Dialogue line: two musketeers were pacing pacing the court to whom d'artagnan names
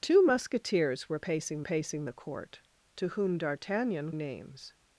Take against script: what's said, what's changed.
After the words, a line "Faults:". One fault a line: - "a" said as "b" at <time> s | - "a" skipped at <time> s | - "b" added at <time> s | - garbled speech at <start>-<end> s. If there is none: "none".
two musketeers were pacing pacing the court to whom d'artagnan names
Faults:
none